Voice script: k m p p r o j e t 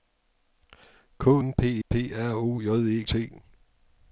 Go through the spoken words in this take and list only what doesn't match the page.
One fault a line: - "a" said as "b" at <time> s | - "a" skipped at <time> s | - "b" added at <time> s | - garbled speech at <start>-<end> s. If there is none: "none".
none